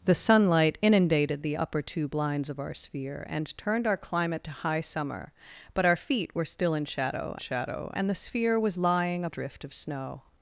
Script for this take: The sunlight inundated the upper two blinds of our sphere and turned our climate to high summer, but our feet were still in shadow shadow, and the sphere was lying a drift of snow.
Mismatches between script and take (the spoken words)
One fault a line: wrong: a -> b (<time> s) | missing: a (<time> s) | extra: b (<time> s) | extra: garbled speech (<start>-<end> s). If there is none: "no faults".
no faults